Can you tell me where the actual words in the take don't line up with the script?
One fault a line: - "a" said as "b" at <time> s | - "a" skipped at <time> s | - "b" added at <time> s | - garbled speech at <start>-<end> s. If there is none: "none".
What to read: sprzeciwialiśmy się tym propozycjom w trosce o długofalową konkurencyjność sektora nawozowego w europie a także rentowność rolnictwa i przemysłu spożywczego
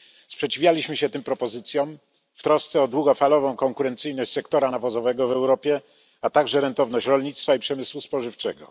none